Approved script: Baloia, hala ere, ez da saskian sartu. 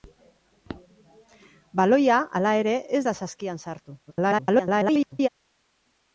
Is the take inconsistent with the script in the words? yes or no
yes